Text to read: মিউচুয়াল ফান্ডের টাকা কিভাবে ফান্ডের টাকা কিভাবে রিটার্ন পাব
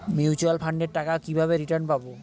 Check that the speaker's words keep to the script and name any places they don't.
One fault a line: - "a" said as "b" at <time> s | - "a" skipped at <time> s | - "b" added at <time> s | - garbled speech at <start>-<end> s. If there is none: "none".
- "ফান্ডের টাকা কিভাবে" skipped at 1.5 s